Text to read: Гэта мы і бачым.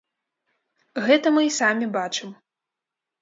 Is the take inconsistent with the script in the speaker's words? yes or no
yes